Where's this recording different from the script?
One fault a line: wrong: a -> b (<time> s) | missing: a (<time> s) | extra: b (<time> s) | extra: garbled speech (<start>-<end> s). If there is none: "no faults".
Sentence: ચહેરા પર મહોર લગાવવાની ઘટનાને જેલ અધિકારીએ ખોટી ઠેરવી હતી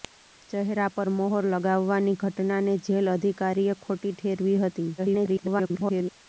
extra: garbled speech (5.0-6.1 s)